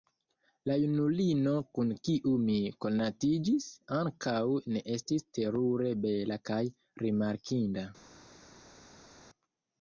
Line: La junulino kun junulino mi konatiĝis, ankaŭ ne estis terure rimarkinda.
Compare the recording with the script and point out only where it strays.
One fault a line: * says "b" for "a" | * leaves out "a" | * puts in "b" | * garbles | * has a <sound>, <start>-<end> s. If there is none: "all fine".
* says "kiu" for "junulino"
* puts in "bela kaj"